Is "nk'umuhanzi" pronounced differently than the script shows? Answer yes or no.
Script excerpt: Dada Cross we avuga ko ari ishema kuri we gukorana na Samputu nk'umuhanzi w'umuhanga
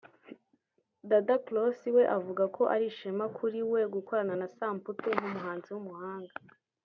no